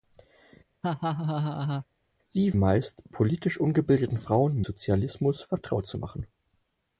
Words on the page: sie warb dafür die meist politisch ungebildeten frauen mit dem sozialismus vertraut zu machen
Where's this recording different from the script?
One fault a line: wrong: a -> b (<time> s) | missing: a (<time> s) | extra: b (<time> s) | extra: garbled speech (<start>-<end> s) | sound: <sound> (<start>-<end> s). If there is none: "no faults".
sound: laugh (0.8-1.9 s)
missing: warb dafür die (2.6 s)
missing: mit dem (4.6 s)